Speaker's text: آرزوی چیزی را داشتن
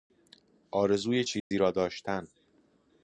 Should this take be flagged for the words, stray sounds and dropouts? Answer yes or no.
yes